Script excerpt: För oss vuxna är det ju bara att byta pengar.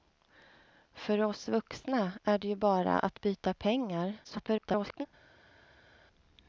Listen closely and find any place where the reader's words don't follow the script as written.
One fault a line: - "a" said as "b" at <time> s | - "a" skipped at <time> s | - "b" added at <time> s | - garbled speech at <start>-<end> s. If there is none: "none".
- garbled speech at 4.2-5.1 s